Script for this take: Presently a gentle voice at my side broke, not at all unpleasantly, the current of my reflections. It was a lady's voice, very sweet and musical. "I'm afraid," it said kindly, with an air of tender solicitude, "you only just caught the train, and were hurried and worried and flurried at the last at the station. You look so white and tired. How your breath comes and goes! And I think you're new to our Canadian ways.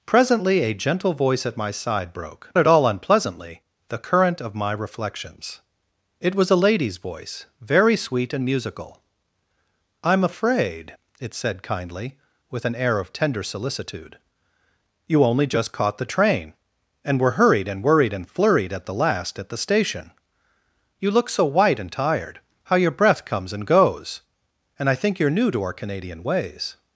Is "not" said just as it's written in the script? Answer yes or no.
no